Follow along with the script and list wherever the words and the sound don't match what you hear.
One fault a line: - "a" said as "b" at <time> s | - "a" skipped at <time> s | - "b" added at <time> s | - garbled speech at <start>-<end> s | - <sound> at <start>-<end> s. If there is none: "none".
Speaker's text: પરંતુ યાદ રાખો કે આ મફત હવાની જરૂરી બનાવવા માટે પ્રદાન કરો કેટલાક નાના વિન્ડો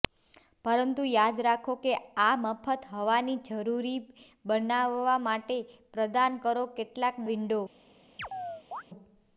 - "નાના" skipped at 7.2 s
- chirp at 8.2-8.8 s